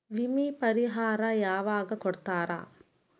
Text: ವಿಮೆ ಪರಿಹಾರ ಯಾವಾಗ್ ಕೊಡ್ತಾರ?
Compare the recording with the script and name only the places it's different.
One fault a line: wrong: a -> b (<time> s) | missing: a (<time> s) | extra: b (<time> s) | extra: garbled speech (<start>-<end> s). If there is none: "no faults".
no faults